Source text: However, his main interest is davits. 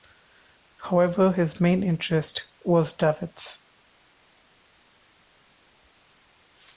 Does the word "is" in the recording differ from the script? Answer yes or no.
yes